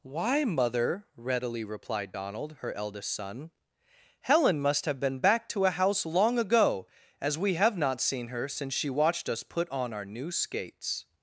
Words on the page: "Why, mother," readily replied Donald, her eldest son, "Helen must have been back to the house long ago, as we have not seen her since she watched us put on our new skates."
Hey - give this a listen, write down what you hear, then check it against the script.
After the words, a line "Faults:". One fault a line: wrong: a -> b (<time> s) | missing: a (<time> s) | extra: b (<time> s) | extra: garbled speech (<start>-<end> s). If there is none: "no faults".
"Why, mother," readily replied Donald, her eldest son, "Helen must have been back to a house long ago, as we have not seen her since she watched us put on our new skates."
Faults:
wrong: the -> a (5.6 s)